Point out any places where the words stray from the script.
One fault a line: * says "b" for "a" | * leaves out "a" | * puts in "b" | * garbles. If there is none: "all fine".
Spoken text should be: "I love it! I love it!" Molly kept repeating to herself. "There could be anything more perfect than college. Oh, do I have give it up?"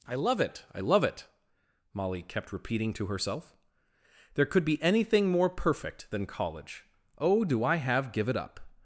all fine